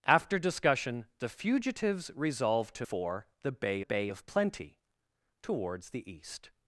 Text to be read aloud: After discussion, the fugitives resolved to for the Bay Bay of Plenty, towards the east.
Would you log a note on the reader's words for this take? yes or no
no